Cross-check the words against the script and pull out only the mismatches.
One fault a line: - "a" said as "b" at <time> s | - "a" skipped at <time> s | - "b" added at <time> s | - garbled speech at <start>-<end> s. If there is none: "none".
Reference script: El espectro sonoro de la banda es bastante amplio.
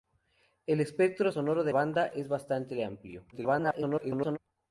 - "la" skipped at 1.7 s
- garbled speech at 3.3-4.4 s